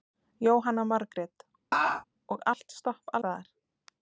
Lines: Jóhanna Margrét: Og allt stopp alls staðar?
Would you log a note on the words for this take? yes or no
yes